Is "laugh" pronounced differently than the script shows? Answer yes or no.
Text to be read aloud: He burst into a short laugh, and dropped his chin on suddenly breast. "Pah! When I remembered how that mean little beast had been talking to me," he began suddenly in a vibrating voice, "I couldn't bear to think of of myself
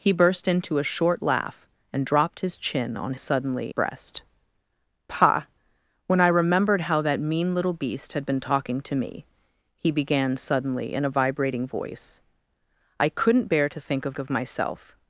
no